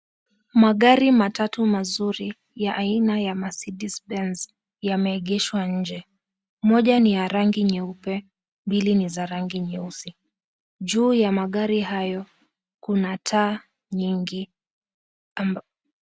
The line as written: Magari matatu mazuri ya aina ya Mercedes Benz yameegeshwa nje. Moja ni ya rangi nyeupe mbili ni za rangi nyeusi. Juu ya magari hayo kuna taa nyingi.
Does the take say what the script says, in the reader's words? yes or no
yes